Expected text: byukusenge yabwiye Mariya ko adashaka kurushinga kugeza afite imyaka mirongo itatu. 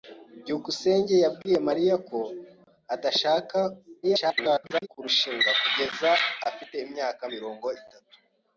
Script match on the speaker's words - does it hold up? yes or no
no